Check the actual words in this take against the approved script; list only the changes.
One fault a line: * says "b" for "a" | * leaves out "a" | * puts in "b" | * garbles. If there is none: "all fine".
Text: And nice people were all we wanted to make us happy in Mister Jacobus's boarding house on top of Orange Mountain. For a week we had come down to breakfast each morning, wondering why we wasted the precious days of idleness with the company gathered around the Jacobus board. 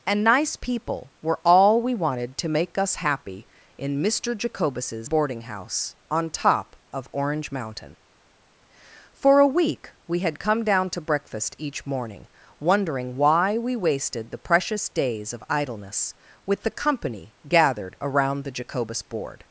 all fine